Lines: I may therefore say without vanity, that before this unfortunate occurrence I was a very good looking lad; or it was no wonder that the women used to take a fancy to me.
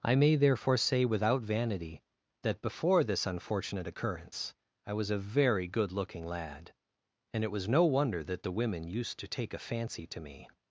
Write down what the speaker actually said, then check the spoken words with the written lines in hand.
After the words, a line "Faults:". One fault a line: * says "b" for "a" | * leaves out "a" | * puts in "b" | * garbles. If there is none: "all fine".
I may therefore say without vanity, that before this unfortunate occurrence I was a very good looking lad; and it was no wonder that the women used to take a fancy to me.
Faults:
* says "and" for "or"